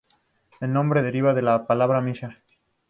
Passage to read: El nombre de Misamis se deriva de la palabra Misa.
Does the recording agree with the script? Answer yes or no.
no